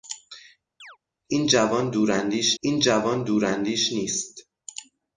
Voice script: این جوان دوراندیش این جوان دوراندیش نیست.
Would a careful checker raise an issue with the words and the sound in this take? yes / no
yes